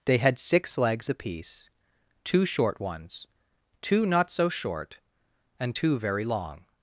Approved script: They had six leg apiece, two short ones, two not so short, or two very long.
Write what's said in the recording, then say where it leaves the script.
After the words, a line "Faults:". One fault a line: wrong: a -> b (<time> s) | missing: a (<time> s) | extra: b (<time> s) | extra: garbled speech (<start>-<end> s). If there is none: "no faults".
They had six legs apiece, two short ones, two not so short, and two very long.
Faults:
wrong: leg -> legs (0.8 s)
wrong: or -> and (5.6 s)